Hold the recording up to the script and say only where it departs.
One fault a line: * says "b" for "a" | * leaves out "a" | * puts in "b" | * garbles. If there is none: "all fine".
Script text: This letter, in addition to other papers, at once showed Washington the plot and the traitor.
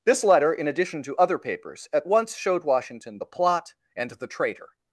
all fine